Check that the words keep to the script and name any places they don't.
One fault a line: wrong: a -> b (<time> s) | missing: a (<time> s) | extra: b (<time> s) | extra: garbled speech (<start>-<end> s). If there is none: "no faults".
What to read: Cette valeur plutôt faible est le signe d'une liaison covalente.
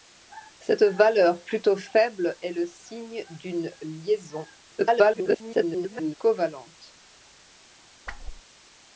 extra: garbled speech (4.8-6.1 s)